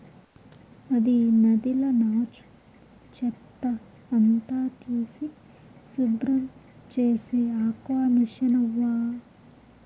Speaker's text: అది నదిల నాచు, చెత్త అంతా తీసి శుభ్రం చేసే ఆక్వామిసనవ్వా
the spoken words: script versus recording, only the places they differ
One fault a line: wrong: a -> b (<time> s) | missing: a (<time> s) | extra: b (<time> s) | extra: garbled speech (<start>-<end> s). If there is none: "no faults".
no faults